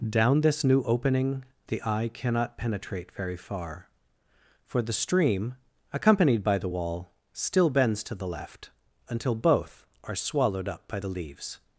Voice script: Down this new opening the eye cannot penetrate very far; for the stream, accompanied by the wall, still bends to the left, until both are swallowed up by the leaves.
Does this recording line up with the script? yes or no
yes